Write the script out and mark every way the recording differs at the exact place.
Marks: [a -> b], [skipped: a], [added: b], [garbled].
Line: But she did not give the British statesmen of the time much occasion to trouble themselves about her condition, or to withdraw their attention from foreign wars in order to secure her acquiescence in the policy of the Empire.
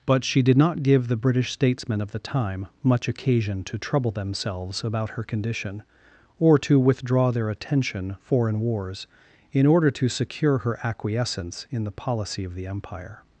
But she did not give the British statesmen of the time much occasion to trouble themselves about her condition, or to withdraw their attention [skipped: from] foreign wars in order to secure her acquiescence in the policy of the Empire.